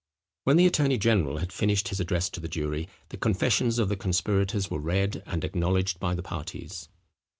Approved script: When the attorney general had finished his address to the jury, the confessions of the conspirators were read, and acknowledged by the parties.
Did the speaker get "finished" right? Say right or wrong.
right